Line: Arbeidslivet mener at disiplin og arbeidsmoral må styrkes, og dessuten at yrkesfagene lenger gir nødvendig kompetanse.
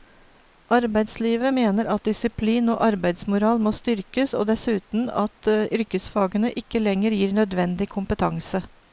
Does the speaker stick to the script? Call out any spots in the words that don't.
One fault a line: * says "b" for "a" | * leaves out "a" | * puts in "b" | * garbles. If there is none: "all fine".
* puts in "ikke"